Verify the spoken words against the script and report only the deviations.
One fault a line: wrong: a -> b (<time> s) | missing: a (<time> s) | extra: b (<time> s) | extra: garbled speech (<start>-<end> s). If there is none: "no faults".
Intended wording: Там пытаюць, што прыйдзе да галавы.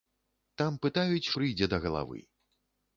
missing: што (1.3 s)